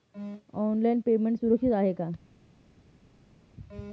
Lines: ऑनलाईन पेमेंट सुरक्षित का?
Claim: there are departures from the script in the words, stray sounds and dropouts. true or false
true